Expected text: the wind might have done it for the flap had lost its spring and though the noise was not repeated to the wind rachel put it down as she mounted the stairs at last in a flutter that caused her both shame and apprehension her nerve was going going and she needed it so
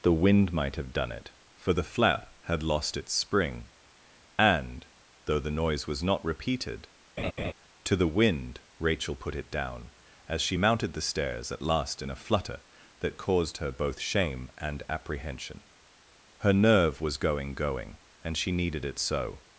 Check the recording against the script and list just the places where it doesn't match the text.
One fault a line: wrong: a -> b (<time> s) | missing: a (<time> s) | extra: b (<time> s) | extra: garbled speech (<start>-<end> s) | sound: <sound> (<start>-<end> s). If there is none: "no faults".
sound: laugh (7.2-7.5 s)